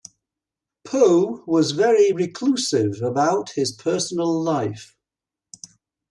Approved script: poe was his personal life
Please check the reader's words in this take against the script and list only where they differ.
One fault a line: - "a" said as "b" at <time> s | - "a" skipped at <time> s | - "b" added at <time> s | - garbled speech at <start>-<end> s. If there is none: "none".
- "very reclusive about" added at 1.7 s